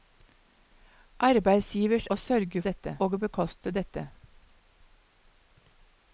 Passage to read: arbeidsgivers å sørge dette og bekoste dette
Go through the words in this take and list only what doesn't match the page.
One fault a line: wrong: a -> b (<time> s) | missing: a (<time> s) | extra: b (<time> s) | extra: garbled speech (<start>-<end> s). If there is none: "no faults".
no faults